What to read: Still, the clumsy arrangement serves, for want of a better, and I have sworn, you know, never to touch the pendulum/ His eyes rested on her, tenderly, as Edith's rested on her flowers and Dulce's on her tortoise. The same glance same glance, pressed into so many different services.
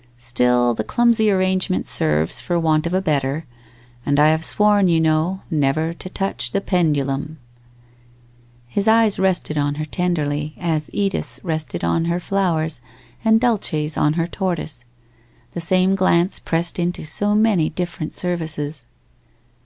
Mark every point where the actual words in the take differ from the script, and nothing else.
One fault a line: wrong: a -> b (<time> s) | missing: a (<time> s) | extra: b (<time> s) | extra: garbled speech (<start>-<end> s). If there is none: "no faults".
missing: same glance (16.4 s)